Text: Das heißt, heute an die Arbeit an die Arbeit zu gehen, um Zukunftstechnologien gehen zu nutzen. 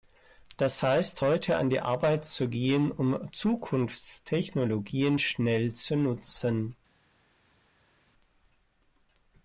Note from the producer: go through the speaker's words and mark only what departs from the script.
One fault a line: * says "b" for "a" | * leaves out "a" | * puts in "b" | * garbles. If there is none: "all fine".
* leaves out "an die Arbeit"
* says "schnell" for "gehen"